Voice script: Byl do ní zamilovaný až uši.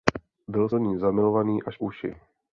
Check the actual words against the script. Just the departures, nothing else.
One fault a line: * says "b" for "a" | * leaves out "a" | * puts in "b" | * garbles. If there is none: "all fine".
all fine